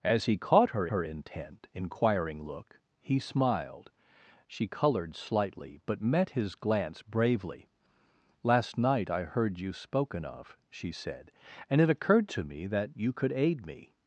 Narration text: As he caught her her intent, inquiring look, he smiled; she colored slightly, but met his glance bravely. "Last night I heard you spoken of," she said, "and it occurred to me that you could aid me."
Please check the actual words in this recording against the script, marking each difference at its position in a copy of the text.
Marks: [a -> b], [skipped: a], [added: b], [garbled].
As he caught her her intent, inquiring look, he smiled; she colored slightly, but met his glance bravely. "Last night I heard you spoken of," she said, "and it occurred to me that you could aid me."